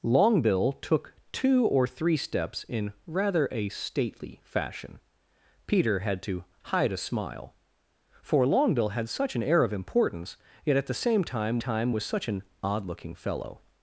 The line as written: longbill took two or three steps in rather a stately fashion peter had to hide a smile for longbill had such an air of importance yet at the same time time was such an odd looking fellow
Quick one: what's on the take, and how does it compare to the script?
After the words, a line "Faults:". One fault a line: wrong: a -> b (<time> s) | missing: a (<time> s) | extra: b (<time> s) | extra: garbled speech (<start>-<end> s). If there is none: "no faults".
longbill took two or three steps in rather a stately fashion peter had to hide a smile for longbill had such an air of importance yet at the same time time was such an odd looking fellow
Faults:
no faults